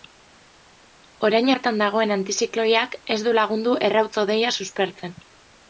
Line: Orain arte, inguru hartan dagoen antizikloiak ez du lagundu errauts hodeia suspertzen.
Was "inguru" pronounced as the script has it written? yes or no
no